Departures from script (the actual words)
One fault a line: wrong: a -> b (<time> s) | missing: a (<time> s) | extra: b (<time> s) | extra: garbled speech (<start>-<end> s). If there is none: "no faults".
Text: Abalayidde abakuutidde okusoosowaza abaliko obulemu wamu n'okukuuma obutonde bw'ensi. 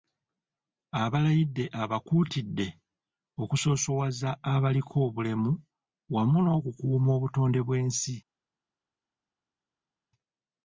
no faults